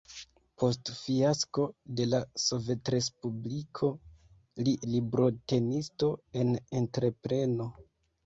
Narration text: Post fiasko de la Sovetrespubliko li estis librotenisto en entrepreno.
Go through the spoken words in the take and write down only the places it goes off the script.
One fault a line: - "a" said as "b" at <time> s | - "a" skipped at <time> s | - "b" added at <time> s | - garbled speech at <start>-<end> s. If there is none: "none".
- "estis" skipped at 4.7 s